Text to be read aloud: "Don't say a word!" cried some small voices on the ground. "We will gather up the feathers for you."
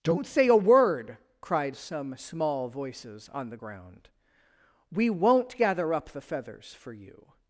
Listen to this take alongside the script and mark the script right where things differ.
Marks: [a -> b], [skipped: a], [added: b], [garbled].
"Don't say a word!" cried some small voices on the ground. "We [will -> won't] gather up the feathers for you."